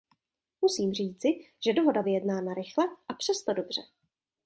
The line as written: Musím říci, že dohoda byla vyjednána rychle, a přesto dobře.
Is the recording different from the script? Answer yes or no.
yes